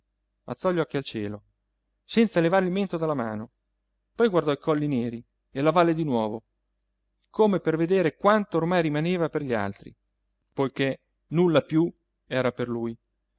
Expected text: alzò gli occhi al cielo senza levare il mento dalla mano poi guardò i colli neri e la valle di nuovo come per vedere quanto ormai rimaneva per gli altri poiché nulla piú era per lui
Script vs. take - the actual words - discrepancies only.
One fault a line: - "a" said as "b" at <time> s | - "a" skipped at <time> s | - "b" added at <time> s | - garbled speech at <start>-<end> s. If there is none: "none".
none